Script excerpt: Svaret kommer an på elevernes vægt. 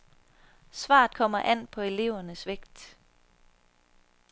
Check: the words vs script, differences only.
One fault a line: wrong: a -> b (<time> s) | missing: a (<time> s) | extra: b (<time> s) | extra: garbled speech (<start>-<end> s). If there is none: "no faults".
no faults